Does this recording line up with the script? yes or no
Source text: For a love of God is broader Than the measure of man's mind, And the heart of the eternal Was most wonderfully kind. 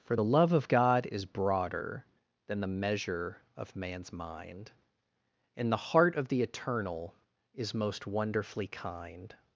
no